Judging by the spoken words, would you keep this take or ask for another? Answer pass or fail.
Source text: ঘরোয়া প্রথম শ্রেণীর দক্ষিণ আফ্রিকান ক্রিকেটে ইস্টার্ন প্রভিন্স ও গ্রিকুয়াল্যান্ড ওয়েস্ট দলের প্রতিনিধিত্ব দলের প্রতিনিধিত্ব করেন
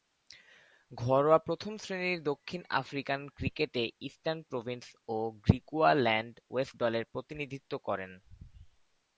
fail